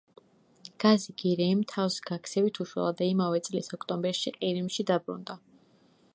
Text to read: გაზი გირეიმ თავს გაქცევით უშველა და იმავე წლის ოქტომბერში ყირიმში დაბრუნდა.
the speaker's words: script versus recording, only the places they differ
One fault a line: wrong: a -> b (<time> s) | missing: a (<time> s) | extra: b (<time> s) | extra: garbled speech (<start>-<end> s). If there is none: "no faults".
no faults